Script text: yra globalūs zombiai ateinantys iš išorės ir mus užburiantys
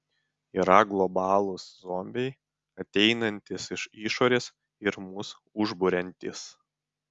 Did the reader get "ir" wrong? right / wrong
right